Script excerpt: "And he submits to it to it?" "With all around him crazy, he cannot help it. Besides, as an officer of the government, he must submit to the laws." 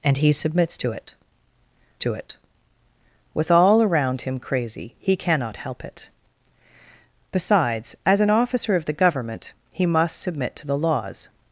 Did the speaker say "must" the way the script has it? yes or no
yes